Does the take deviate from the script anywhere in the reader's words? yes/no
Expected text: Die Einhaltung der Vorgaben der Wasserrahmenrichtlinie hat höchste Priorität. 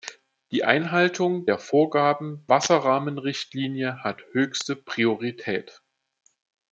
yes